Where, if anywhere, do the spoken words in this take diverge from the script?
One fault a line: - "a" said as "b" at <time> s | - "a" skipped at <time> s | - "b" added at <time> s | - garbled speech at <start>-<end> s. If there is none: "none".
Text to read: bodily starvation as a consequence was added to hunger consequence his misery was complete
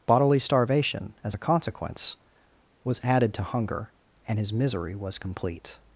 - "consequence" said as "and" at 4.3 s